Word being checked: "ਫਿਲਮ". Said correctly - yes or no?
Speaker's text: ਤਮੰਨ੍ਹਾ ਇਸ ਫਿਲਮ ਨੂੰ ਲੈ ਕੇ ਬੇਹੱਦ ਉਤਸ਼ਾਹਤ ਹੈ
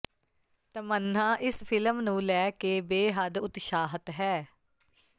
yes